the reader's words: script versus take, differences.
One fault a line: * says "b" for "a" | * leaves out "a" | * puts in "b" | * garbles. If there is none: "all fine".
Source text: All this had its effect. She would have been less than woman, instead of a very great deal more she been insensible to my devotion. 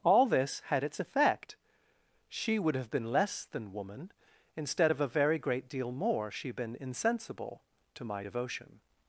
all fine